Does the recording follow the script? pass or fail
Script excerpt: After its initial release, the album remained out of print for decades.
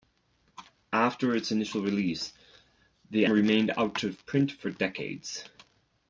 fail